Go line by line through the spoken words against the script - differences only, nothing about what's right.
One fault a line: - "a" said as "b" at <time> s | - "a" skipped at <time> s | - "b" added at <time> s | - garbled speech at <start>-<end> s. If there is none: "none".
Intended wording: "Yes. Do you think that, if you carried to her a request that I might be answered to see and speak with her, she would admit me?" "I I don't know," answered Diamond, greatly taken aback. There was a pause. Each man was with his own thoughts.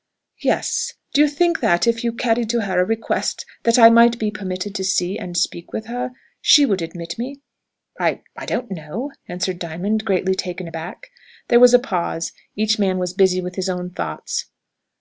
- "answered" said as "permitted" at 4.3 s
- "busy" added at 13.1 s